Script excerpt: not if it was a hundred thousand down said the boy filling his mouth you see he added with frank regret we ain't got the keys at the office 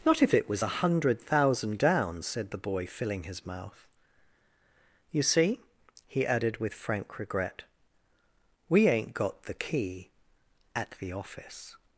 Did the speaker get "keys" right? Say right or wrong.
wrong